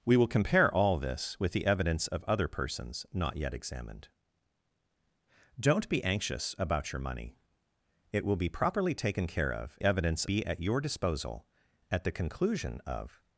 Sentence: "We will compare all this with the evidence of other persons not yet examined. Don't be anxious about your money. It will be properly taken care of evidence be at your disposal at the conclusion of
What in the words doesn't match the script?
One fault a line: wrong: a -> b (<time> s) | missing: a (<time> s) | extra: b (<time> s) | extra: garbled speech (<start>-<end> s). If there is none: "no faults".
no faults